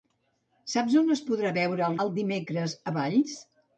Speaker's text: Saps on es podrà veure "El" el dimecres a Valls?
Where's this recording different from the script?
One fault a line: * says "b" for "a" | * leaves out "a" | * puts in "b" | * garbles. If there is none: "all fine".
all fine